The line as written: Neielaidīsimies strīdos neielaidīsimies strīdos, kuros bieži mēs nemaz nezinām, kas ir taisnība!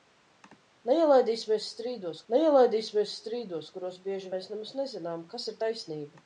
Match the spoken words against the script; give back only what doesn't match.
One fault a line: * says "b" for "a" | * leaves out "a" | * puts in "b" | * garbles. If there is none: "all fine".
all fine